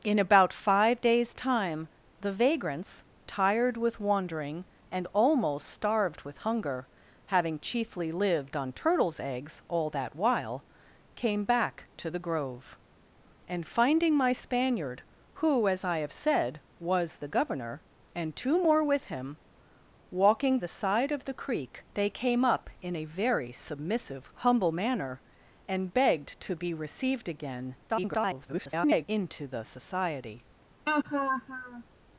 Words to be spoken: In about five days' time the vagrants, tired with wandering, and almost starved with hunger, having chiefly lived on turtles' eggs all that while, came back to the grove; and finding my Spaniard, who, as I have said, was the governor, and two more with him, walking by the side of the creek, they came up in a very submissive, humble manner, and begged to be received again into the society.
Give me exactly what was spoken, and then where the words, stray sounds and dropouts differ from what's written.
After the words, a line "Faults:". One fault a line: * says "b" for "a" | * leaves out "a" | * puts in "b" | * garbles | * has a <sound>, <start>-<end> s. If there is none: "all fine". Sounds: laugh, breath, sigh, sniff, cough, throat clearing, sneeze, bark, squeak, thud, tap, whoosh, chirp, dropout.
In about five days' time the vagrants, tired with wandering, and almost starved with hunger, having chiefly lived on turtles' eggs all that while, came back to the grove; and finding my Spaniard, who, as I have said, was the governor, and two more with him, walking the side of the creek, they came up in a very submissive, humble manner, and begged to be received again [garbled] into the society.
Faults:
* leaves out "by"
* garbles
* has a laugh, 30.9-31.8 s